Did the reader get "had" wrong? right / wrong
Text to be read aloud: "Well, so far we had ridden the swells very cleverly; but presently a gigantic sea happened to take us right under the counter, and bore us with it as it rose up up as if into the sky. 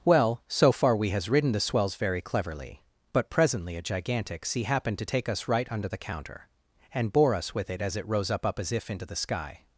wrong